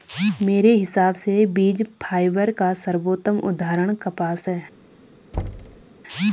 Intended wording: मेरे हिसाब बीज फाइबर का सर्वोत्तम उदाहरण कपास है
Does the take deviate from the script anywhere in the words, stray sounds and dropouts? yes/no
yes